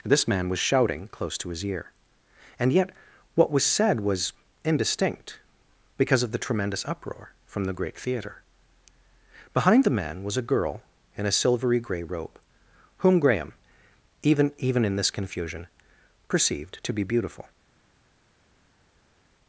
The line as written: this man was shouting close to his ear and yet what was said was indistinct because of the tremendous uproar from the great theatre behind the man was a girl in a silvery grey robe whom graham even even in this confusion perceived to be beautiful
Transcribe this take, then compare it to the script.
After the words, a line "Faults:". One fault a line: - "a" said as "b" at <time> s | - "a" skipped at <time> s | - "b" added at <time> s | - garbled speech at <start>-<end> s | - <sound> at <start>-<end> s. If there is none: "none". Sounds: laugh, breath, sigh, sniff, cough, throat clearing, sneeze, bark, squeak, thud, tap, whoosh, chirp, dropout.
this man was shouting close to his ear and yet what was said was indistinct because of the tremendous uproar from the great theatre behind the man was a girl in a silvery grey robe whom graham even even in this confusion perceived to be beautiful
Faults:
none